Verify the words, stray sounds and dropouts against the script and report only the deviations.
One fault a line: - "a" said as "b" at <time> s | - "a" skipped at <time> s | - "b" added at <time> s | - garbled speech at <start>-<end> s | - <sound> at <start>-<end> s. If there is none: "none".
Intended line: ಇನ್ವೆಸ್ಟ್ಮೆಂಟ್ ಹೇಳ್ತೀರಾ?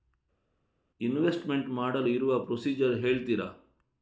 - "ಮಾಡಲು ಇರುವ ಪ್ರೊಸೀಜರ್" added at 1.7 s